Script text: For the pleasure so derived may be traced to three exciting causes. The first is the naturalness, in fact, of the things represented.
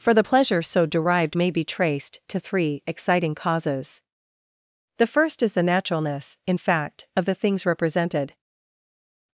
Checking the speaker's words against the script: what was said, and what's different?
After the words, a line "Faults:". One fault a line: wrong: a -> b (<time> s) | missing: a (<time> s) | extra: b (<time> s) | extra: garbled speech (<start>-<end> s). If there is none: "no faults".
For the pleasure so derived may be traced to three exciting causes. The first is the naturalness, in fact, of the things represented.
Faults:
no faults